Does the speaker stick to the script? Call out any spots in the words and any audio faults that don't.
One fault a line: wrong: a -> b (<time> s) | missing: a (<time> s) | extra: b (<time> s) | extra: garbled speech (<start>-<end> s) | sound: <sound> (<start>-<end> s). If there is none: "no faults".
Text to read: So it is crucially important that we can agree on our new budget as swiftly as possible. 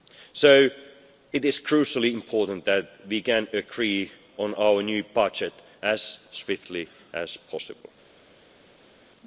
no faults